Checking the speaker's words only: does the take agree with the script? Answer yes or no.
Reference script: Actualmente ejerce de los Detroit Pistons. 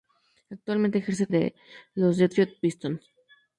yes